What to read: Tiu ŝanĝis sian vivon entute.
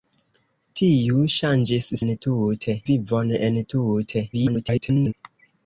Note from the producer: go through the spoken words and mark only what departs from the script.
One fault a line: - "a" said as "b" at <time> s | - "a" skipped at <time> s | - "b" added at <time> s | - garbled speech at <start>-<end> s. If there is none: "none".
- "sian" said as "entute" at 2.0 s
- garbled speech at 4.3-5.1 s